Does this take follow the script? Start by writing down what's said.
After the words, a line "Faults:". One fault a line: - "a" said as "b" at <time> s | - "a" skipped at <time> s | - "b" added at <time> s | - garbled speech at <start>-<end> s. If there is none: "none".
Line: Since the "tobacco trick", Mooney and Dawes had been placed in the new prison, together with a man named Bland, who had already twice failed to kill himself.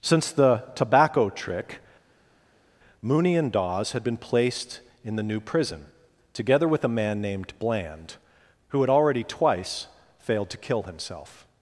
Since the "tobacco trick", Mooney and Dawes had been placed in the new prison, together with a man named Bland, who had already twice failed to kill himself.
Faults:
none